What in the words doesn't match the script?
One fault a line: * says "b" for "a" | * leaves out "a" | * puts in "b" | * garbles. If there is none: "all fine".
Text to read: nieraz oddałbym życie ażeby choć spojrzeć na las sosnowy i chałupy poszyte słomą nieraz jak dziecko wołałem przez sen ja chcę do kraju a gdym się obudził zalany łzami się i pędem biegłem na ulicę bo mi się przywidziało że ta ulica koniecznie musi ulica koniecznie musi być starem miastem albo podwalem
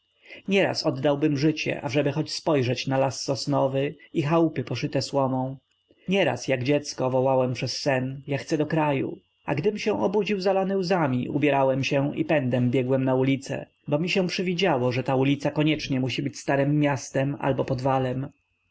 * puts in "ubierałem"
* leaves out "ulica koniecznie musi"